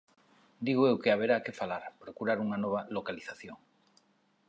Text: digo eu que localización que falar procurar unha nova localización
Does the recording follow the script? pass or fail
fail